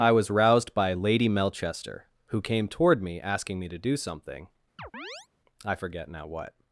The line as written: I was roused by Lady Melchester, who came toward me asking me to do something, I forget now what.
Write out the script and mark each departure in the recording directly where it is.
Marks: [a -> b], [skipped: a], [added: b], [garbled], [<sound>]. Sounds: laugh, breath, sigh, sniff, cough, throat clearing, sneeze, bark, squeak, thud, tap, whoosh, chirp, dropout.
I was roused by Lady Melchester, who came toward me asking me to do something, [chirp] I forget now what.